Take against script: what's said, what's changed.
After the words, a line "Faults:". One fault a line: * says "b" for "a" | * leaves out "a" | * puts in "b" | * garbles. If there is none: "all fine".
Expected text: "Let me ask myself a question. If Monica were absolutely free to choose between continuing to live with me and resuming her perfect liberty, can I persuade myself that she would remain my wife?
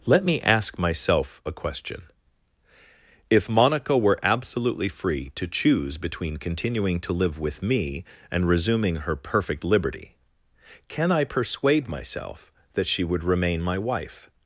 "Let me ask myself a question. If Monica were absolutely free to choose between continuing to live with me and resuming her perfect liberty, can I persuade myself that she would remain my wife?
Faults:
all fine